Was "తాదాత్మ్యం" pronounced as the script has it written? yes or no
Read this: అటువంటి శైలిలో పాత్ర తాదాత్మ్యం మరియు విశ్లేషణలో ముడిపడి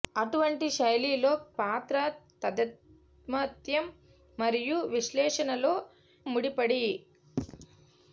yes